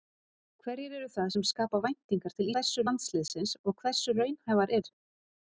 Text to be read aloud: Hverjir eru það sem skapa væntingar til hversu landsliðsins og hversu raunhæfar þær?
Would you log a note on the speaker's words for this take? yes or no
no